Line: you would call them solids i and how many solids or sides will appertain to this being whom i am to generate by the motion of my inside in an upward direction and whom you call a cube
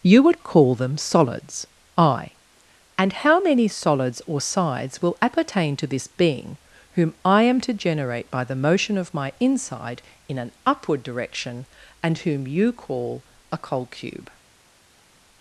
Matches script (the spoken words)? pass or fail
fail